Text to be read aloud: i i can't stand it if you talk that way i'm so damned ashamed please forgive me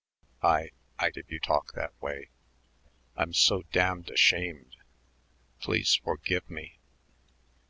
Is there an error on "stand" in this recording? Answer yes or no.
yes